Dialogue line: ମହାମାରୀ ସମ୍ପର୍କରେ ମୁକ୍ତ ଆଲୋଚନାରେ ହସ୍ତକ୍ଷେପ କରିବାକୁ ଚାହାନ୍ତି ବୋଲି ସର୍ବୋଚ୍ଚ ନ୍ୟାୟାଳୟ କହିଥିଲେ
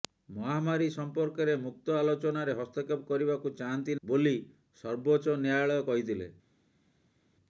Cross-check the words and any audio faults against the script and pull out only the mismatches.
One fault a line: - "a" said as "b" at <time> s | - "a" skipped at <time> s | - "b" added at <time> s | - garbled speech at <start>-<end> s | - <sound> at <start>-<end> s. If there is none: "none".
none